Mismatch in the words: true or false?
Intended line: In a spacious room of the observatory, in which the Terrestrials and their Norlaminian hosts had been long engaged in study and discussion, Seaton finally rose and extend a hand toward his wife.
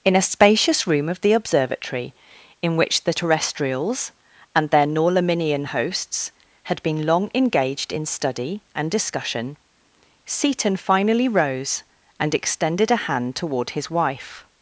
true